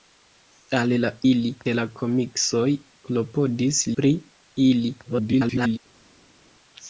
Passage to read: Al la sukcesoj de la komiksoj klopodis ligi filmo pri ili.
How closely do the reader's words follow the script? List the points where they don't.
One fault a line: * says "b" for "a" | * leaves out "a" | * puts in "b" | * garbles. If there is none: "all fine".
* says "ili" for "sukcesoj"
* leaves out "ligi filmo"
* garbles